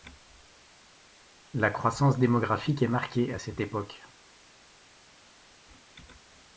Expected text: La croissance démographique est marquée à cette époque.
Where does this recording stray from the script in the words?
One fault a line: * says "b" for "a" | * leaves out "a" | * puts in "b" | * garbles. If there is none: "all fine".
all fine